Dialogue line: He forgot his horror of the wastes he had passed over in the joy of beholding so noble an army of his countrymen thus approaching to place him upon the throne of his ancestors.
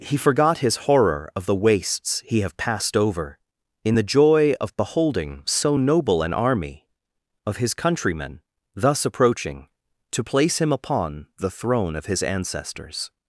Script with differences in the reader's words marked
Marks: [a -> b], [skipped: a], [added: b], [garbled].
He forgot his horror of the wastes he [had -> have] passed over in the joy of beholding so noble an army of his countrymen thus approaching to place him upon the throne of his ancestors.